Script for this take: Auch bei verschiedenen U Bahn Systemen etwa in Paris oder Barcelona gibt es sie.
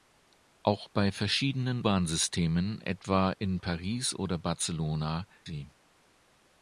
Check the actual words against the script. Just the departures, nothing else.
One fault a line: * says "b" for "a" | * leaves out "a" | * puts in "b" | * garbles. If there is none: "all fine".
* leaves out "U"
* leaves out "gibt es"